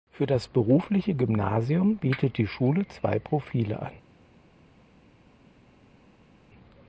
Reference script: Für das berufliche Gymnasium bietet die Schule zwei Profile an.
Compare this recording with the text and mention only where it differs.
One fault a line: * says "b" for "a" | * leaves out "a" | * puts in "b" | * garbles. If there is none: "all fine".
all fine